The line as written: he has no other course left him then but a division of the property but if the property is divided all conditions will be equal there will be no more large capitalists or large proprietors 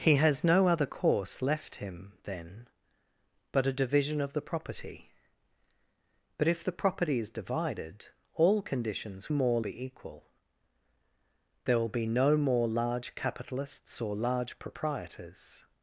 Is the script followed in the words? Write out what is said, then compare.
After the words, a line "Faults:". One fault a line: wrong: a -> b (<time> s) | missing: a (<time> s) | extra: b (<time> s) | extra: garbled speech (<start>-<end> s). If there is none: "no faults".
he has no other course left him then but a division of the property but if the property is divided all conditions more be equal there will be no more large capitalists or large proprietors
Faults:
wrong: will -> more (9.3 s)